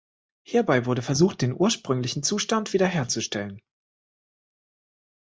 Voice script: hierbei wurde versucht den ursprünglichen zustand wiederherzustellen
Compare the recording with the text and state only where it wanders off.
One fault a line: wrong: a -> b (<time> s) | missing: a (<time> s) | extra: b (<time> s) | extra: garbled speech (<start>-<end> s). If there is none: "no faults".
no faults